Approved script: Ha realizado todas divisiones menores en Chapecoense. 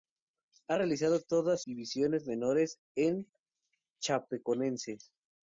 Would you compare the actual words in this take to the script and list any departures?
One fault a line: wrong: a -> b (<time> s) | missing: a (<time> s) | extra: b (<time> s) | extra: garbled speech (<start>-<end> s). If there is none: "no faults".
no faults